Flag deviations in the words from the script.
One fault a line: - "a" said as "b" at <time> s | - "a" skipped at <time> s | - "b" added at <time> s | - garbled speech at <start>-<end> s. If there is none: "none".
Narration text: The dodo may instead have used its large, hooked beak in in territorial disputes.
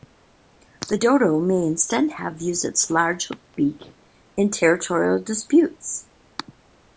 - "in" skipped at 4.5 s